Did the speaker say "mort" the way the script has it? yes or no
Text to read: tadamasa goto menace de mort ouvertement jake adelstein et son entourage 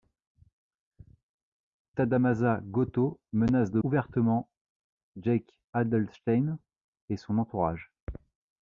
no